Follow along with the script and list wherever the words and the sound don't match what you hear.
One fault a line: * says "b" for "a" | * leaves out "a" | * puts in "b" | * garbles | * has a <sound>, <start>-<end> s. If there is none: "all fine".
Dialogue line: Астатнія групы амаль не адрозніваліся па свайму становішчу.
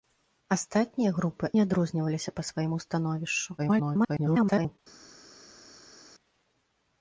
* leaves out "амаль"
* garbles